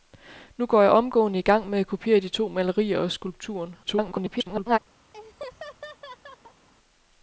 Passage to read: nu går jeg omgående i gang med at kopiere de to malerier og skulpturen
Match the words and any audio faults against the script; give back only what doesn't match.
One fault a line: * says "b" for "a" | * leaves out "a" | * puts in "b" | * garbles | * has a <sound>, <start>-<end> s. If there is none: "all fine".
* garbles
* has a laugh, 5.1-6.7 s